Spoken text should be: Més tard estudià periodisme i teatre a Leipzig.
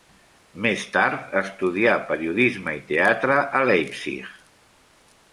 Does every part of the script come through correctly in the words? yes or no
yes